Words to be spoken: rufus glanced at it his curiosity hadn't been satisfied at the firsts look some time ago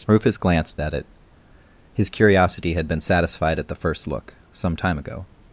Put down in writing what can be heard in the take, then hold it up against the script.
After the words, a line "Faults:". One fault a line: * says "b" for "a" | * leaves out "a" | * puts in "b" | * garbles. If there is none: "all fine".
rufus glanced at it his curiosity had been satisfied at the first look some time ago
Faults:
* says "had" for "hadn't"
* says "first" for "firsts"